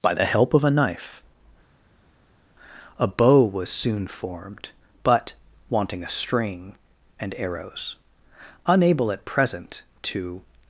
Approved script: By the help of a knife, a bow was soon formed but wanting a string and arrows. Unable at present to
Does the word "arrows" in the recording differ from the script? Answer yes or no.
no